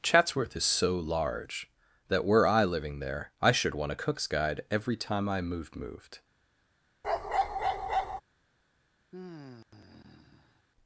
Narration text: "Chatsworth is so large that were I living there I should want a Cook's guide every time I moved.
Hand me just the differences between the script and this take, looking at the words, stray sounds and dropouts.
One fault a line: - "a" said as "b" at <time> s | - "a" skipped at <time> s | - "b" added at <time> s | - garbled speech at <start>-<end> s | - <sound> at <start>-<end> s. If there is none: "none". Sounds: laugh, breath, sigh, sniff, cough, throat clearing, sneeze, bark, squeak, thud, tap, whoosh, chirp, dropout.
- "moved" added at 5.8 s
- bark at 7.0-8.2 s
- sigh at 9.1-10.6 s